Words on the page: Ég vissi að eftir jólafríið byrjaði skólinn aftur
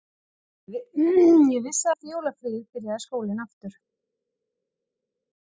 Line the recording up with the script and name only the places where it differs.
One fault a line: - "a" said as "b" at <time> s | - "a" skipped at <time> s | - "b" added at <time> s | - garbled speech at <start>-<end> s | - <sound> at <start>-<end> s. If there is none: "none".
none